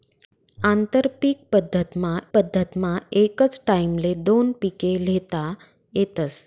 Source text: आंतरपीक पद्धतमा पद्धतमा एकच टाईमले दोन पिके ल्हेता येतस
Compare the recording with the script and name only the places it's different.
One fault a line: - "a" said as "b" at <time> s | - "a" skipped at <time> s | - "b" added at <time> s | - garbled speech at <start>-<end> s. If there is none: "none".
none